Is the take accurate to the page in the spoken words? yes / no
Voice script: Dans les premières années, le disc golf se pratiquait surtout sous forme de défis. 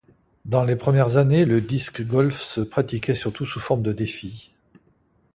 yes